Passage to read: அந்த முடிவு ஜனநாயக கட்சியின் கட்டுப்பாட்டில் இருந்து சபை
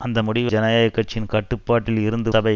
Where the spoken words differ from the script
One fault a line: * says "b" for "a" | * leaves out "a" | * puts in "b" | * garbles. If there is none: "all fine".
all fine